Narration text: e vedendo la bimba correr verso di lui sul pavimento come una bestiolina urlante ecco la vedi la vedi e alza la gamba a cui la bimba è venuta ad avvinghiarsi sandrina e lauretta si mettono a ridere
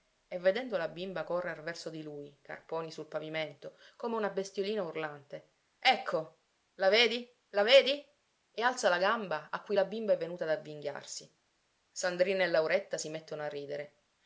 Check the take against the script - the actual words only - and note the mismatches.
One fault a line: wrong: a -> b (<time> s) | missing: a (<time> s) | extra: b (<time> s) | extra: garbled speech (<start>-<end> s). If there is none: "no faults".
extra: carponi (2.4 s)